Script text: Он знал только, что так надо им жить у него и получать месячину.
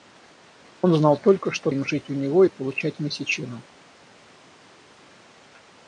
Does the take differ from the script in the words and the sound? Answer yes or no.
yes